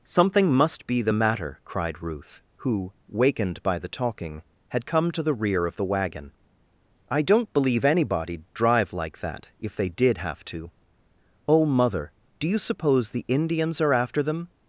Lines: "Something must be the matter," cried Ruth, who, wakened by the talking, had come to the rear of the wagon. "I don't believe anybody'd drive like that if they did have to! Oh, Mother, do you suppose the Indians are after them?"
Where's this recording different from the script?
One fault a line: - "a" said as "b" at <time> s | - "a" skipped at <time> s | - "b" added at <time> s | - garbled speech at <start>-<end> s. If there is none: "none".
none